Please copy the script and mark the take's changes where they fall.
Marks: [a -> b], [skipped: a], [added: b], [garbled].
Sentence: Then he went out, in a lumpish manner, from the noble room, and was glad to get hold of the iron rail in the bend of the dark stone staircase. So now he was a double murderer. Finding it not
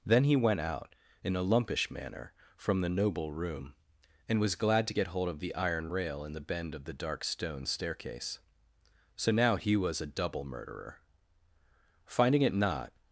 Then he went out, in a lumpish manner, from the noble room, and was glad to get hold of the iron rail in the bend of the dark stone staircase. So now he was a double murderer. Finding it not